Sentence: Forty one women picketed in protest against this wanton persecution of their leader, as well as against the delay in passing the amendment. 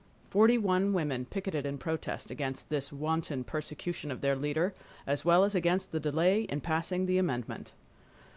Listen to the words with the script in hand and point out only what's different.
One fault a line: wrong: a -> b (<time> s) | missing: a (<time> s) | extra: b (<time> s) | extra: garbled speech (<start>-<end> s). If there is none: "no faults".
no faults